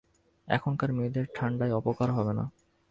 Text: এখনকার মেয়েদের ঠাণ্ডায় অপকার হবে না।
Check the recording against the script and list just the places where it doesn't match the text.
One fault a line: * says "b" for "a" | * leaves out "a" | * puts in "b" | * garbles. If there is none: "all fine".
all fine